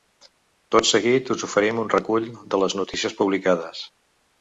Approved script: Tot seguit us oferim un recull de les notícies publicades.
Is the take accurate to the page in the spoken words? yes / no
yes